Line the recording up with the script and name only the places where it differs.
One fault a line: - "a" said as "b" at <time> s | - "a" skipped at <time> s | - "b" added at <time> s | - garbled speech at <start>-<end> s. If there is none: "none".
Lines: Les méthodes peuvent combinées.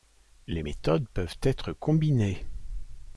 - "être" added at 1.4 s